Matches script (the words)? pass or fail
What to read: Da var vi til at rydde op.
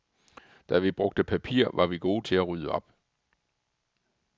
fail